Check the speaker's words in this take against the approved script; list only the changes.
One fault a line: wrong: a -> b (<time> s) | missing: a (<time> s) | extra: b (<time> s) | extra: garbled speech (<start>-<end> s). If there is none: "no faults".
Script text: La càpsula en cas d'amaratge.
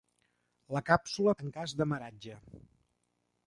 no faults